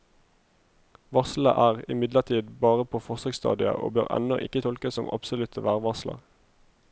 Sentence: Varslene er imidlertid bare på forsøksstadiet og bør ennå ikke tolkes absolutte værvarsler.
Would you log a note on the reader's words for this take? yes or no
yes